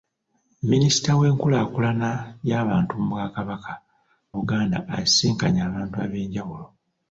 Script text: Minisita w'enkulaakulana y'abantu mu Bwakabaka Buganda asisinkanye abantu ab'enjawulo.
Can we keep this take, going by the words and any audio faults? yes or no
yes